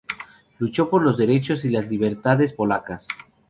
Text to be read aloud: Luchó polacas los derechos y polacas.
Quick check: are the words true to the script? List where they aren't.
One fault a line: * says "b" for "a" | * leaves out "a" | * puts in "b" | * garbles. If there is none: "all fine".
* says "por" for "polacas"
* puts in "las libertades"